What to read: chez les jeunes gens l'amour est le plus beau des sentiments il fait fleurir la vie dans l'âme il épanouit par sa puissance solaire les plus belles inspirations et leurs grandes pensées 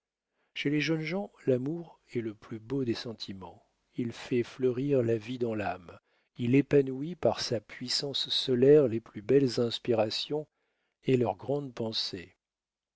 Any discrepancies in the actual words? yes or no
no